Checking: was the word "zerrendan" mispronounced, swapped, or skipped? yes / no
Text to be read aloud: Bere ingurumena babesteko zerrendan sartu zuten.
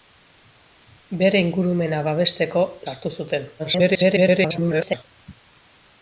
yes